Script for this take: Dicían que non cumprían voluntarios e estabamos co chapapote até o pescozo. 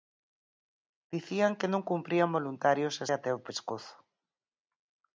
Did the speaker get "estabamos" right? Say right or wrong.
wrong